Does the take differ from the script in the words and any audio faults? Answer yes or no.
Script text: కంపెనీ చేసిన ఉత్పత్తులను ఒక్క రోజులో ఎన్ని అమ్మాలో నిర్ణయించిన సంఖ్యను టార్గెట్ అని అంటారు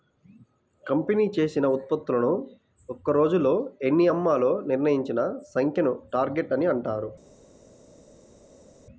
no